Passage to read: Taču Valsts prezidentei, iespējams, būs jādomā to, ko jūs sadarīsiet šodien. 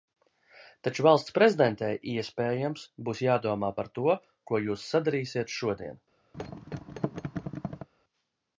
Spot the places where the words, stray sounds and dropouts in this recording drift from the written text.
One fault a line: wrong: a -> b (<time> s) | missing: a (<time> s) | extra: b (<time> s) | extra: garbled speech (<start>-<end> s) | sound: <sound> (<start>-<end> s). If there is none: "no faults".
extra: par (3.8 s)
sound: thud (6.3-7.9 s)